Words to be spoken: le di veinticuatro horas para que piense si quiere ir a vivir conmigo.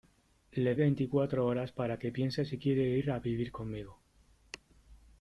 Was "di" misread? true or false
true